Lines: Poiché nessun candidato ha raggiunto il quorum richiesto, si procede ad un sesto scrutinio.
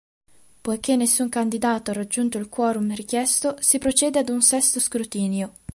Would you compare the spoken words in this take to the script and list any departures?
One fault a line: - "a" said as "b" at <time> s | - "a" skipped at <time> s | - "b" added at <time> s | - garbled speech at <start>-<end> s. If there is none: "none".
none